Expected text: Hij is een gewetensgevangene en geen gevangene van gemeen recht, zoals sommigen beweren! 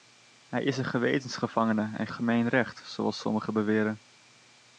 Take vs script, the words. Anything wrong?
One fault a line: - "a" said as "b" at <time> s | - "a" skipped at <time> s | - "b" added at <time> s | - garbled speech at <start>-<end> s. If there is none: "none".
- "geen gevangene van" skipped at 2.1 s